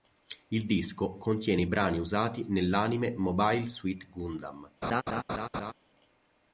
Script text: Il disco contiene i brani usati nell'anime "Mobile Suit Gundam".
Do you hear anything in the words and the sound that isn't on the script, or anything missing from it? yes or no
yes